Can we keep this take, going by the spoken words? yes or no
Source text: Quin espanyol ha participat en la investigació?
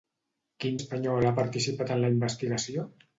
yes